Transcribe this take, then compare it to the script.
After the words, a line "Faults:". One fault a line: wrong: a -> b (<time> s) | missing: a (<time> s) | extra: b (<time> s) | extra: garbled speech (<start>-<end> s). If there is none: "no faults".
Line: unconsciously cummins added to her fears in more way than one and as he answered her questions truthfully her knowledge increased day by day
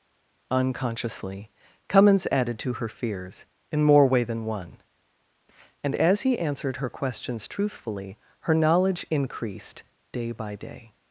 unconsciously cummins added to her fears in more way than one and as he answered her questions truthfully her knowledge increased day by day
Faults:
no faults